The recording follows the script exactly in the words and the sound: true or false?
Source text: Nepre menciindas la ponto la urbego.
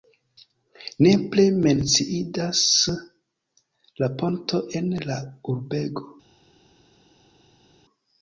false